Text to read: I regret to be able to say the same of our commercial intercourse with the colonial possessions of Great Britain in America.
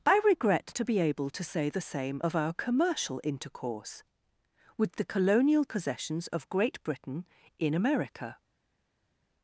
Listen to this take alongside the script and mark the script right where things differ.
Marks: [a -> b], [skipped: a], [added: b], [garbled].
I regret to be able to say the same of our commercial intercourse with the colonial possessions of Great Britain in America.